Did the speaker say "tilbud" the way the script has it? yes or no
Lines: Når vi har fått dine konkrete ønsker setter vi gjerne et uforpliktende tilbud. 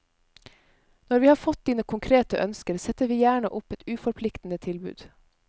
yes